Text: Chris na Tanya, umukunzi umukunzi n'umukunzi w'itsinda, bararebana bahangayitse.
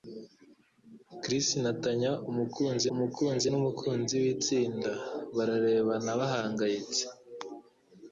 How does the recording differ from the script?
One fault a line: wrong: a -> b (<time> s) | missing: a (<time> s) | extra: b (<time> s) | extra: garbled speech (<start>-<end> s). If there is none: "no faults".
no faults